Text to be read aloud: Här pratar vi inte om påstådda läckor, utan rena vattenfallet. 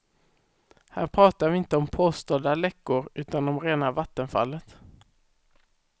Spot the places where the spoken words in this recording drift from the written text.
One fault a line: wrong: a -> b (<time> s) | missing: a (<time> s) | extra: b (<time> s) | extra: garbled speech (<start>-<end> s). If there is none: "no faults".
extra: om (3.5 s)